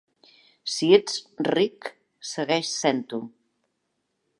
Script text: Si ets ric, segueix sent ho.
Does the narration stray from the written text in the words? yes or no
no